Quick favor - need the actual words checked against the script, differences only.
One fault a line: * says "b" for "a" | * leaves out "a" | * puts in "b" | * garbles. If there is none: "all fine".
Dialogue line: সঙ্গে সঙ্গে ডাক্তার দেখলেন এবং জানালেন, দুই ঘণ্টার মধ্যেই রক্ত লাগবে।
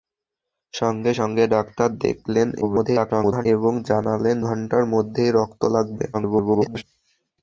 * garbles
* leaves out "দুই"
* garbles